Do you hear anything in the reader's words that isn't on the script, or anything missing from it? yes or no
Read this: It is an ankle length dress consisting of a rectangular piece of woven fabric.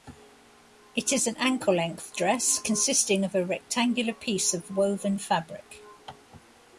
no